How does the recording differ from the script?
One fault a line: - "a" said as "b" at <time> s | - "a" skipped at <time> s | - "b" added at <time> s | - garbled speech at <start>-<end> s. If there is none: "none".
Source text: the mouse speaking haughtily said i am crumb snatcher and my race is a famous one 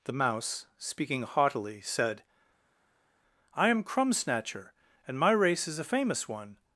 none